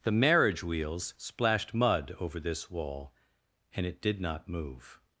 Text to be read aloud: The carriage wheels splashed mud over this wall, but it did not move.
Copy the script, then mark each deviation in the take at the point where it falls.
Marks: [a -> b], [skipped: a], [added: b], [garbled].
The [carriage -> marriage] wheels splashed mud over this wall, [but -> and] it did not move.